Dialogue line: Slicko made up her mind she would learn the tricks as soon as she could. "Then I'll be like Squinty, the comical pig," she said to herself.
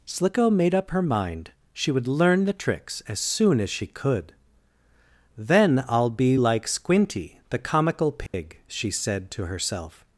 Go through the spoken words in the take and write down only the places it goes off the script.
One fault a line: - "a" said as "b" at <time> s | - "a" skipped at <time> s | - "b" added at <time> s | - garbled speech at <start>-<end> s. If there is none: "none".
none